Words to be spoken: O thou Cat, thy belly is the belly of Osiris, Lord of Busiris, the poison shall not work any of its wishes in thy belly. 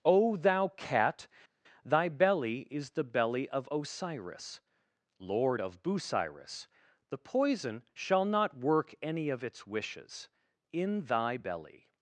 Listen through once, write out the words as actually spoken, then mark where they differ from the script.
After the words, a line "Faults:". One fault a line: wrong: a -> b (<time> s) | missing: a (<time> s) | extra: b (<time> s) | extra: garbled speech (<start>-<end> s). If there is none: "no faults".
O thou Cat, thy belly is the belly of Osiris, Lord of Busiris, the poison shall not work any of its wishes in thy belly.
Faults:
no faults